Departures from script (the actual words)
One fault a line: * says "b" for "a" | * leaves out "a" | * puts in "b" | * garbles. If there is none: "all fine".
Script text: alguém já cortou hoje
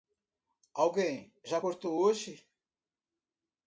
all fine